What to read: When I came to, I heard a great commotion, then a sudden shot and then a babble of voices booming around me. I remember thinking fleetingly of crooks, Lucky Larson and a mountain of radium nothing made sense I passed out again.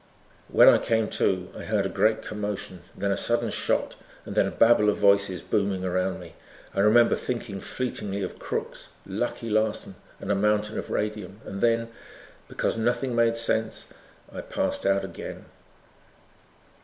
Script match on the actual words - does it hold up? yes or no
no